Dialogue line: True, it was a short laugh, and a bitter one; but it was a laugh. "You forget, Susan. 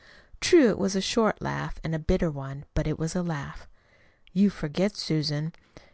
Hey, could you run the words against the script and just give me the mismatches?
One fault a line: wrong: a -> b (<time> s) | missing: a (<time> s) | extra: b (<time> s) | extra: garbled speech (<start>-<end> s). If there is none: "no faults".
no faults